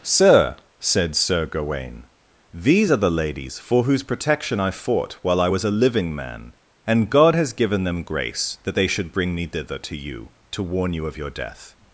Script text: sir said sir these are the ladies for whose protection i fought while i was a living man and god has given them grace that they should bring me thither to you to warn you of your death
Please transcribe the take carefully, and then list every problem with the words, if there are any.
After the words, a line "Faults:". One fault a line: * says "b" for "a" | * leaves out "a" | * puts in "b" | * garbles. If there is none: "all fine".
sir said sir gawaine these are the ladies for whose protection i fought while i was a living man and god has given them grace that they should bring me thither to you to warn you of your death
Faults:
* puts in "gawaine"